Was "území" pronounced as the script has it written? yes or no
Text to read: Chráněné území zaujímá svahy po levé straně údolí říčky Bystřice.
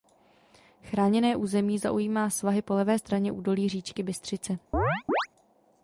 yes